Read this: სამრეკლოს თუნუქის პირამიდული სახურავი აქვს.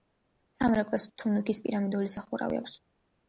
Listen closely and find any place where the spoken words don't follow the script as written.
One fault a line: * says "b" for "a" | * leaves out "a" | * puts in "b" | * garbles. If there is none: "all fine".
all fine